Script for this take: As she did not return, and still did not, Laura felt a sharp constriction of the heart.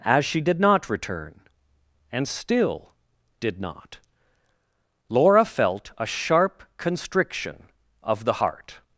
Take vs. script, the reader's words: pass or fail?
pass